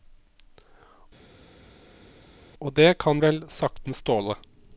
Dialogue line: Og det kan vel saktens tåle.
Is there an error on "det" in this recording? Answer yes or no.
no